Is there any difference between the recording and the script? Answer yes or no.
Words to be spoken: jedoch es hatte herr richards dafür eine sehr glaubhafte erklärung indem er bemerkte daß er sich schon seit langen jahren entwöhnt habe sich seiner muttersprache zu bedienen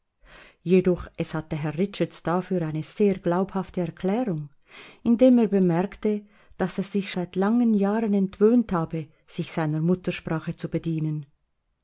yes